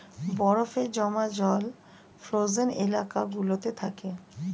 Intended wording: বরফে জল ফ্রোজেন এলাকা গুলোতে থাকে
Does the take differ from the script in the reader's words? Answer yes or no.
yes